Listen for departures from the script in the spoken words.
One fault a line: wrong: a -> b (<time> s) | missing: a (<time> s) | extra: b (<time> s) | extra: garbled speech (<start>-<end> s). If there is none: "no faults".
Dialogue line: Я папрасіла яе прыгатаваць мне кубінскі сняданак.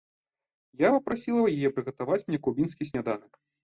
no faults